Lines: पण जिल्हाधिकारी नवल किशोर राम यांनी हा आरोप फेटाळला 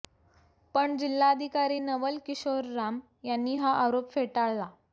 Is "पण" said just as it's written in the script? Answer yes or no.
yes